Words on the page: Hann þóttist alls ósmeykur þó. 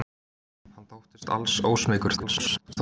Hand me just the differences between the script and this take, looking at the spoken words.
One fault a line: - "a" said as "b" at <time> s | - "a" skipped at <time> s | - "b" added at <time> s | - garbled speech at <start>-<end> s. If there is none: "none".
- garbled speech at 2.2-2.8 s